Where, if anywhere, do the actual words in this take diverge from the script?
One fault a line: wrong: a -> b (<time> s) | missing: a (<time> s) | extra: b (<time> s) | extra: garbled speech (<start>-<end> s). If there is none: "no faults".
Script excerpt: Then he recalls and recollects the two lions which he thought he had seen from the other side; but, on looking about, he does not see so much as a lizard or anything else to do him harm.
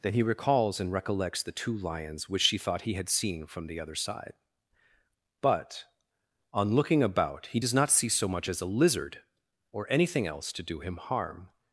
wrong: he -> she (2.4 s)